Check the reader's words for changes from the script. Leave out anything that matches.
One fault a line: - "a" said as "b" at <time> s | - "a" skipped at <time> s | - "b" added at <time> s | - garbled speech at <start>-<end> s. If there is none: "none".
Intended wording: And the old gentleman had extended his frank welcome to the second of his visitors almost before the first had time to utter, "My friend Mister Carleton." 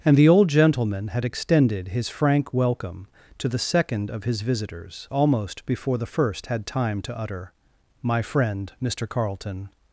none